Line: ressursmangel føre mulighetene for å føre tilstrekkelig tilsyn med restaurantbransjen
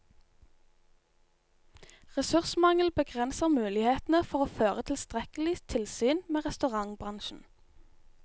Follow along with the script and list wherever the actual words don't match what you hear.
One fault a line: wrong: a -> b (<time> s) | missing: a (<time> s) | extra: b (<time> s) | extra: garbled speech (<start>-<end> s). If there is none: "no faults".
wrong: føre -> begrenser (2.9 s)